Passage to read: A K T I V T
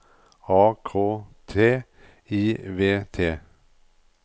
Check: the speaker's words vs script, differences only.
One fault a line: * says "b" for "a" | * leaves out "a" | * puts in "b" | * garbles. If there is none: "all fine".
all fine